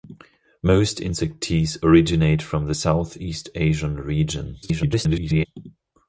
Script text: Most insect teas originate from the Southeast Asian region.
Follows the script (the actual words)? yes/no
no